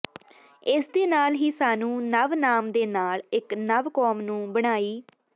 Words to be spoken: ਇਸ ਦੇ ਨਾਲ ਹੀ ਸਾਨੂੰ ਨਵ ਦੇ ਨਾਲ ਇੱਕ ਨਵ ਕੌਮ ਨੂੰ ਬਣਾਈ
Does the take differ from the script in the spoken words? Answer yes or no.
yes